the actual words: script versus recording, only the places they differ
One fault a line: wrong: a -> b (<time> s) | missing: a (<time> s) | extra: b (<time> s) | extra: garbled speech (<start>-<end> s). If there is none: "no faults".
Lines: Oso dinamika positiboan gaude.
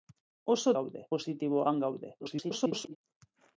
wrong: dinamika -> gaude (0.8 s)
extra: garbled speech (2.2-3.0 s)